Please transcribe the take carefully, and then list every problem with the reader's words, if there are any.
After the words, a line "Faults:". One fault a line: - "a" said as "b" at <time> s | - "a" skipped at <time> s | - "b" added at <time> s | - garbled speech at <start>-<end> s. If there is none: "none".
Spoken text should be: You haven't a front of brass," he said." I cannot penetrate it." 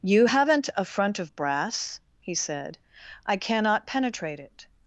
You haven't a front of brass," he said." I cannot penetrate it."
Faults:
none